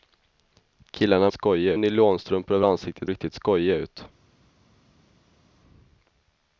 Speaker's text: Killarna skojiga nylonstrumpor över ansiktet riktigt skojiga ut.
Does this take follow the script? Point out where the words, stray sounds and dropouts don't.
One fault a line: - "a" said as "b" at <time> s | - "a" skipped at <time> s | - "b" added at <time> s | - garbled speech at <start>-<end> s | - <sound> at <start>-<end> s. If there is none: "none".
none